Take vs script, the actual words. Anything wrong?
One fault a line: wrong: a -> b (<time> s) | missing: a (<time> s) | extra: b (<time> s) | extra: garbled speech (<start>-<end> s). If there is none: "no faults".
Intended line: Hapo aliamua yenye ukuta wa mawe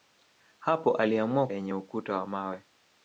no faults